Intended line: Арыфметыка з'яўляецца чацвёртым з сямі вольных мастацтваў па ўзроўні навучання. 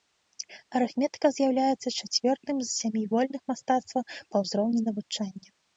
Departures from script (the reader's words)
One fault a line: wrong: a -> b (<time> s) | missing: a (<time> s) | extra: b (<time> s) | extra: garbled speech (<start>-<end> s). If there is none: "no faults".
no faults